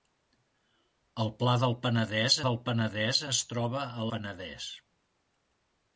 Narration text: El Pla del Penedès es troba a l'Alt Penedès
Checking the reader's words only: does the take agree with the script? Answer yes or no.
no